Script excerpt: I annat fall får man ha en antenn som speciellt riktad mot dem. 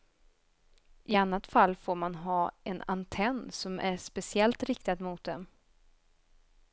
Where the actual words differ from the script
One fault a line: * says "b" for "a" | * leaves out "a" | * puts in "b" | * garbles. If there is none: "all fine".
* puts in "är"